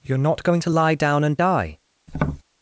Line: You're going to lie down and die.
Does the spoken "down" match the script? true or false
true